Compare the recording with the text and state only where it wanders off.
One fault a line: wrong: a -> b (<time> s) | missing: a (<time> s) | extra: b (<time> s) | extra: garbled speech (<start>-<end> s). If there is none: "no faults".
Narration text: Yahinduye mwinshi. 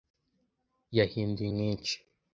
no faults